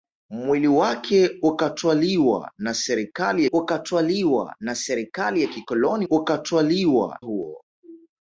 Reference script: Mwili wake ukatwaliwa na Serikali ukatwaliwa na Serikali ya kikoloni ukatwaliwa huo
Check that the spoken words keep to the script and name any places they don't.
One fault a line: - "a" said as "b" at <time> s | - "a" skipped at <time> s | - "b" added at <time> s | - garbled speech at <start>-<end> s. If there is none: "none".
none